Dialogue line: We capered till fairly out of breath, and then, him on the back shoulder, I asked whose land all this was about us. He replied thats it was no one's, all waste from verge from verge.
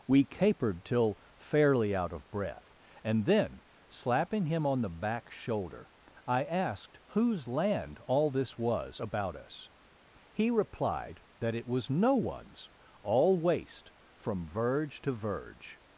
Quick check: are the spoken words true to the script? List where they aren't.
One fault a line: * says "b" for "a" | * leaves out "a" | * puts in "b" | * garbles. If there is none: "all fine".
* puts in "slapping"
* says "that" for "thats"
* says "to" for "from"